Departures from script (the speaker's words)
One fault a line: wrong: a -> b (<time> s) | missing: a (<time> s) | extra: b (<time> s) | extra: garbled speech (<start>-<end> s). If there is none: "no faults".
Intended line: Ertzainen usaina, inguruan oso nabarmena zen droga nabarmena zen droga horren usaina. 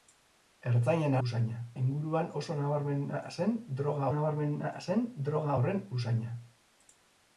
no faults